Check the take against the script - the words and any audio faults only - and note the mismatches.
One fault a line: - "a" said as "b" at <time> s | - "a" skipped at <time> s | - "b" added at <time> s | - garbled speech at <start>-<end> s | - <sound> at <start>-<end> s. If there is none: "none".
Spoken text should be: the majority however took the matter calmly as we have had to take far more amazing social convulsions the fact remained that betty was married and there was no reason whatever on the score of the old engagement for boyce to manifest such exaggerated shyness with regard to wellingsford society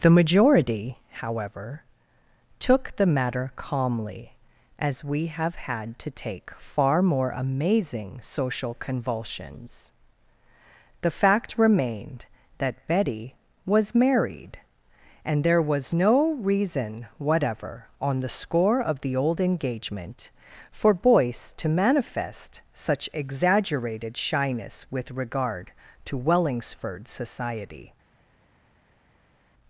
none